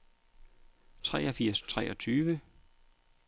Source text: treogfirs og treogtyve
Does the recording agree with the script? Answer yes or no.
yes